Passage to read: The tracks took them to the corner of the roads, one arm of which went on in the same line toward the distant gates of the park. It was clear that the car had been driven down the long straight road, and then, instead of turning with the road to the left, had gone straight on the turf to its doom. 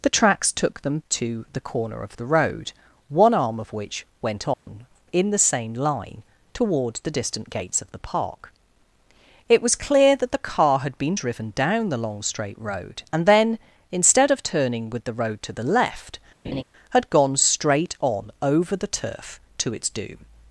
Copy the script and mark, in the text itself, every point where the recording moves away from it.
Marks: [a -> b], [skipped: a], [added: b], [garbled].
The tracks took them to the corner of the [roads, -> road] one arm of which went on in the same line toward the distant gates of the park. It was clear that the car had been driven down the long straight road, and then, instead of turning with the road to the left, had gone straight on [added: over] the turf to its doom.